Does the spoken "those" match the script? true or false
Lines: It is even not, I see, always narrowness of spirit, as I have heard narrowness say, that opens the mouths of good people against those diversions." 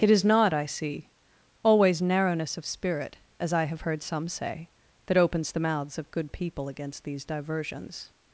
false